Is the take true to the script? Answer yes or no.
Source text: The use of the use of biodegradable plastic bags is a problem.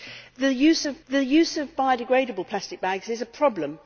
yes